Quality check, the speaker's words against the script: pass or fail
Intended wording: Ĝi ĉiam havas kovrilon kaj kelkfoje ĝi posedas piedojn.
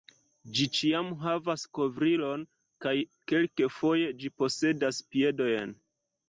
pass